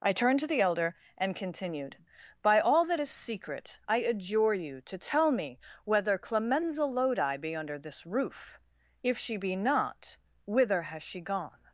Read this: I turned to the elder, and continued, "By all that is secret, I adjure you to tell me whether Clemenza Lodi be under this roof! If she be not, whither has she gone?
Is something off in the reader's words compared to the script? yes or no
no